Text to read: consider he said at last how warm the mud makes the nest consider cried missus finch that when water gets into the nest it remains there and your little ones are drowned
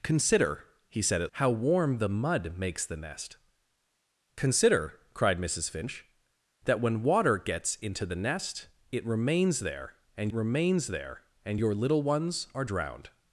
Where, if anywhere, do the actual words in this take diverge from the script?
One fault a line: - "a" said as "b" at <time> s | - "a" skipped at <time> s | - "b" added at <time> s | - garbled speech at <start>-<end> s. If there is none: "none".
- "last" skipped at 1.3 s
- "remains there and" added at 10.3 s